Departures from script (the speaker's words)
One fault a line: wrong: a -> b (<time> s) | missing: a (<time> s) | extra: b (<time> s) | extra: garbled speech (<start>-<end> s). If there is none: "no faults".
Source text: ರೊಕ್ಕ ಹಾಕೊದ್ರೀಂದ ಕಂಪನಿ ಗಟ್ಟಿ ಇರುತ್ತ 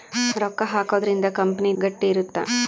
no faults